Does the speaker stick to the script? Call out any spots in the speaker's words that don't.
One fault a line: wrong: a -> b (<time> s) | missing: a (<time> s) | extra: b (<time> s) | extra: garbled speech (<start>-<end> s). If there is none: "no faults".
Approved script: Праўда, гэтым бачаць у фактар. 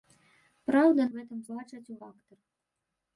no faults